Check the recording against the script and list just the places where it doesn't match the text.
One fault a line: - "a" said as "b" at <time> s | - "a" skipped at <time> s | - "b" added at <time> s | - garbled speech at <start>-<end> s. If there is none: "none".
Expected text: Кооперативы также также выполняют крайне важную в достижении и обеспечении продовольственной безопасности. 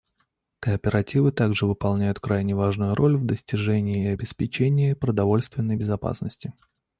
- "также" skipped at 1.7 s
- "роль" added at 3.0 s